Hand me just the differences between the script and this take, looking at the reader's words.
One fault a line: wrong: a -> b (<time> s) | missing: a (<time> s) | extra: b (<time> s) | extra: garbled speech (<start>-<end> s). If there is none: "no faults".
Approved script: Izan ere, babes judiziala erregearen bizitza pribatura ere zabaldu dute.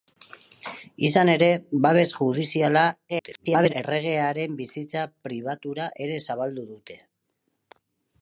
extra: garbled speech (3.1-3.7 s)